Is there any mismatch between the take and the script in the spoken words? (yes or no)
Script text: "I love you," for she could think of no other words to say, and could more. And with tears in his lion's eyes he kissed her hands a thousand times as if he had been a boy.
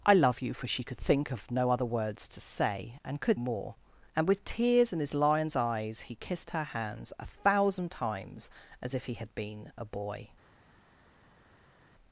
no